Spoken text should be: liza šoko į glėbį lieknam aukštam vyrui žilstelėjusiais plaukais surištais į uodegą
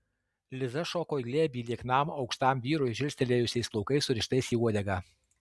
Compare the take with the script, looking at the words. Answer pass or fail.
pass